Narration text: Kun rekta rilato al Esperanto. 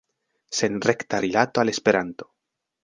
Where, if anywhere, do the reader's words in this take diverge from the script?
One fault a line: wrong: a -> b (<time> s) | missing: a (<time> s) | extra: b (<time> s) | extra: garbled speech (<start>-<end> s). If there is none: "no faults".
wrong: Kun -> Sen (0.6 s)